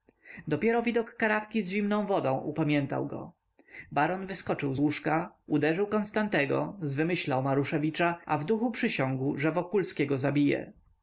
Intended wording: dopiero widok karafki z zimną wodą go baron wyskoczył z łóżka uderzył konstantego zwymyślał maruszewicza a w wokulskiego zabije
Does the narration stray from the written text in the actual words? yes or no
yes